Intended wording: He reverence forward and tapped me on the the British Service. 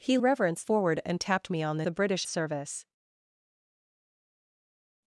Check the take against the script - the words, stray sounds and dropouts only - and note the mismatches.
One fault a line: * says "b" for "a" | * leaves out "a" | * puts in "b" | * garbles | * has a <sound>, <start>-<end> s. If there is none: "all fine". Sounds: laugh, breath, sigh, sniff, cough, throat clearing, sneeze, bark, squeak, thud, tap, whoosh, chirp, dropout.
all fine